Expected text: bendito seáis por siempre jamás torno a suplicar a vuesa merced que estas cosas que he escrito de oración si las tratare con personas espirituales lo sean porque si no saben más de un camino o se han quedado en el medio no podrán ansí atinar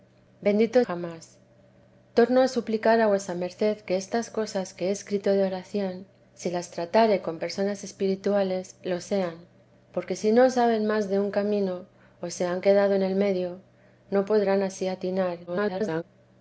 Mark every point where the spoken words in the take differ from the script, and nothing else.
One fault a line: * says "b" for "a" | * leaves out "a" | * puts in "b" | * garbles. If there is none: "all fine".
* leaves out "seáis por siempre"
* garbles